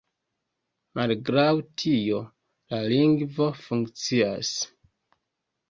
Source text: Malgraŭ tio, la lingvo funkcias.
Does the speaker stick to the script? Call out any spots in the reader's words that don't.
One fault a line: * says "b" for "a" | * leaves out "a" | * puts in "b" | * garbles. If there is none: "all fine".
all fine